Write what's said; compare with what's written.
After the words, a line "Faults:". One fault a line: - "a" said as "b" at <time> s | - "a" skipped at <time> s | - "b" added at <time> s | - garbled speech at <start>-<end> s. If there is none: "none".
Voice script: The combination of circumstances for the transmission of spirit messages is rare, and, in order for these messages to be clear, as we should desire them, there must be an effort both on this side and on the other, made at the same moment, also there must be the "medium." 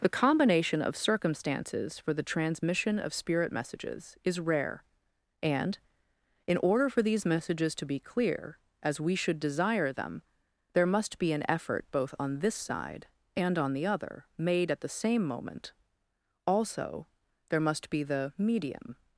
The combination of circumstances for the transmission of spirit messages is rare, and, in order for these messages to be clear, as we should desire them, there must be an effort both on this side and on the other, made at the same moment, also there must be the "medium."
Faults:
none